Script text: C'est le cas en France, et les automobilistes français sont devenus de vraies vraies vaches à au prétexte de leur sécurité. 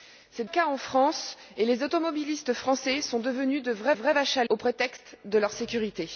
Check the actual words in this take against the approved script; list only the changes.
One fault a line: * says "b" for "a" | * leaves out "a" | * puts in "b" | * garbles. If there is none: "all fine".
all fine